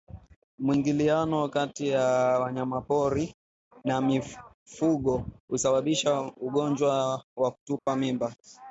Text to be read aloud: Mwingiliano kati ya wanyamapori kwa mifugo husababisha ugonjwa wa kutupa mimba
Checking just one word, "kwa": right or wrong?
wrong